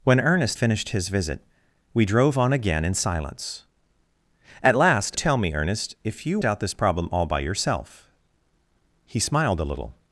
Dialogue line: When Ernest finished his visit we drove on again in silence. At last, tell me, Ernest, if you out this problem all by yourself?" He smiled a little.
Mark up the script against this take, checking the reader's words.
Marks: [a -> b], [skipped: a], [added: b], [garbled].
When Ernest finished his visit we drove on again in silence. At last, tell me, Ernest, if you out this problem all by yourself?" He smiled a little.